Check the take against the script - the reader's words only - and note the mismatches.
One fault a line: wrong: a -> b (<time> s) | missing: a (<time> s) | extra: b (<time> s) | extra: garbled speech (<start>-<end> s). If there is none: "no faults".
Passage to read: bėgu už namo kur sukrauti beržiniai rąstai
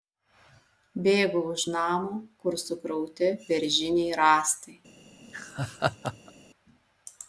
no faults